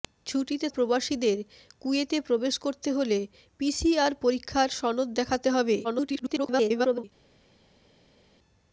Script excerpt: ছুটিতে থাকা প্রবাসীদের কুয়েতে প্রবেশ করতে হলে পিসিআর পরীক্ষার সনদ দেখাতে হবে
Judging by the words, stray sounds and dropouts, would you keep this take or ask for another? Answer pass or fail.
fail